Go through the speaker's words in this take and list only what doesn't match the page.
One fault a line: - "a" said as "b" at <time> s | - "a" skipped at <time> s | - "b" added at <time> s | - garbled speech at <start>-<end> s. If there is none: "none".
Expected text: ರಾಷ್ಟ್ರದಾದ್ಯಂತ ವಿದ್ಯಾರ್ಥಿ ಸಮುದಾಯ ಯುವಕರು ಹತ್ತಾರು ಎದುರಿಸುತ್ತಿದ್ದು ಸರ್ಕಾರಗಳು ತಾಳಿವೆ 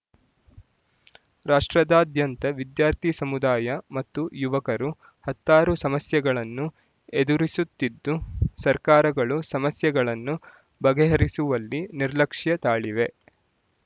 - "ಮತ್ತು" added at 4.0 s
- "ಸಮಸ್ಯೆಗಳನ್ನು" added at 5.8 s
- "ಸಮಸ್ಯೆಗಳನ್ನು ಬಗೆಹರಿಸುವಲ್ಲಿ ನಿರ್ಲಕ್ಷ್ಯ" added at 9.5 s